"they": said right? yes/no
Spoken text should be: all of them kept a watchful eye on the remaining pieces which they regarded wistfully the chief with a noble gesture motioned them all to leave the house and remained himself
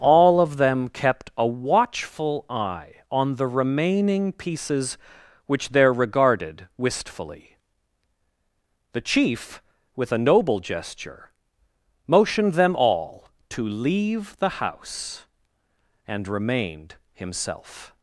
no